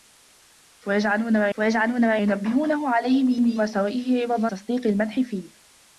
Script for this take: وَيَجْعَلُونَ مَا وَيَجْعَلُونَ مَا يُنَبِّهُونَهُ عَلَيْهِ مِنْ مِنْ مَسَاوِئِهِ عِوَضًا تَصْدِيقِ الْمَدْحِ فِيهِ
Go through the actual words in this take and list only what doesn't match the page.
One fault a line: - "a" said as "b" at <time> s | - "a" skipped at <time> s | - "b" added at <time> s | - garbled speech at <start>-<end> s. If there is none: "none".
none